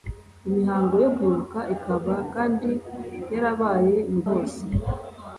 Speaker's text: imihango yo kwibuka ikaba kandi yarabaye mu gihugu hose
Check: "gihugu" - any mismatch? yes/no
yes